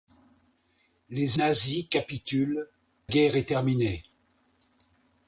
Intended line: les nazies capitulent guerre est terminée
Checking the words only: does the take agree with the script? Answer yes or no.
yes